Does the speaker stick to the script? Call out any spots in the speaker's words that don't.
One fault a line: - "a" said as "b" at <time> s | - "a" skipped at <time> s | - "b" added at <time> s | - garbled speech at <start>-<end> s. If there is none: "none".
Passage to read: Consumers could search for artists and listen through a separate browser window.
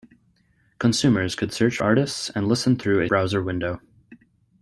- "for" skipped at 1.8 s
- "separate" skipped at 3.1 s